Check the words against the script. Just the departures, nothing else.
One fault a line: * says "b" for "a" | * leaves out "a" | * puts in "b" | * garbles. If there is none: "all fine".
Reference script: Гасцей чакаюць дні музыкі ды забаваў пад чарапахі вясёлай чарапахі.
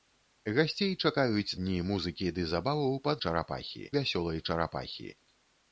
all fine